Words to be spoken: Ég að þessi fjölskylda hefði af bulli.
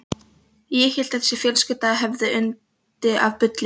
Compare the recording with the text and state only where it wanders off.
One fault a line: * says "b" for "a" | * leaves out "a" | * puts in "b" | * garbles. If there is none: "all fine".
* puts in "hélt"
* puts in "yndi"